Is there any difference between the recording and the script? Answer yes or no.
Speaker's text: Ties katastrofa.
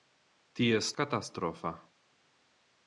no